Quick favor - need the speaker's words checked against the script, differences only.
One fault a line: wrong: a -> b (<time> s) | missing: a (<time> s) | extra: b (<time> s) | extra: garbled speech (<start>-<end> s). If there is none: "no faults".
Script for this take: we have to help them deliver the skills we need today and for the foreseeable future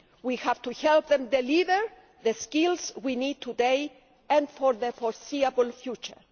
no faults